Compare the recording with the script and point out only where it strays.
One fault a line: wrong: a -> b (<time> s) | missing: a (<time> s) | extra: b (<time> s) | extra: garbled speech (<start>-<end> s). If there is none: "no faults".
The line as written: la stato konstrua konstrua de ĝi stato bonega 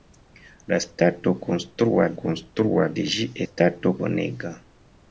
no faults